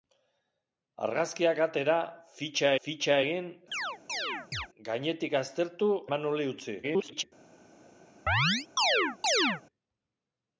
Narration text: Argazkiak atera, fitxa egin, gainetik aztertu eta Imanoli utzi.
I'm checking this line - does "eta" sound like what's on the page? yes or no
no